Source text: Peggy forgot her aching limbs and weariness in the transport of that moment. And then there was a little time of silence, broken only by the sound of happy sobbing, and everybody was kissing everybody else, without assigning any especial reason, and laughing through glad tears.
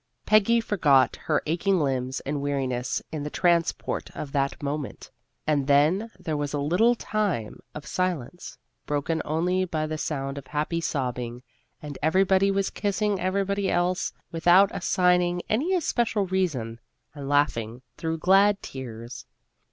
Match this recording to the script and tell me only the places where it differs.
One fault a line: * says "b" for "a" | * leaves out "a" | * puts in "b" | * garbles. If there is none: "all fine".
all fine